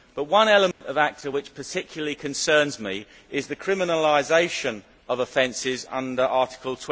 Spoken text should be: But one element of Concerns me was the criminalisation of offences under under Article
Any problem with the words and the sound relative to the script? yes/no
yes